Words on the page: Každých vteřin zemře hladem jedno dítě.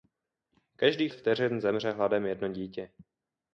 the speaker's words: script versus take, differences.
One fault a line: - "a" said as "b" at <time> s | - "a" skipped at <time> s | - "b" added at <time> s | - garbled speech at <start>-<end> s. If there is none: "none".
none